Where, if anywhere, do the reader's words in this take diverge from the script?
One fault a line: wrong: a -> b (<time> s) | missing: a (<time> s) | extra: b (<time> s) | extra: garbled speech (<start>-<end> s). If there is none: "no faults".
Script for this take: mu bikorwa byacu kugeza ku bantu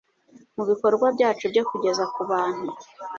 extra: byo (1.5 s)